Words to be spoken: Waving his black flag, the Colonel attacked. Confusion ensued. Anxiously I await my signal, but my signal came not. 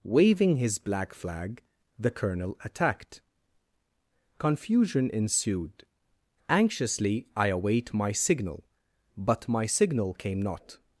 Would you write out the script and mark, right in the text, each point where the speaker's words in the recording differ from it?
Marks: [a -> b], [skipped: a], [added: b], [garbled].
Waving his black flag, the Colonel attacked. Confusion ensued. Anxiously I await my signal, but my signal came not.